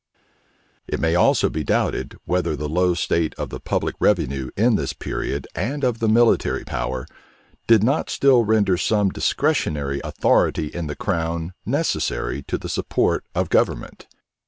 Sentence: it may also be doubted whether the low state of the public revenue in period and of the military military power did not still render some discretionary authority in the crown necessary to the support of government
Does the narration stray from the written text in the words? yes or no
yes